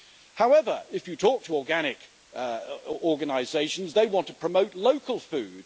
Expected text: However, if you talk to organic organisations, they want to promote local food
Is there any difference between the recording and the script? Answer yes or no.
no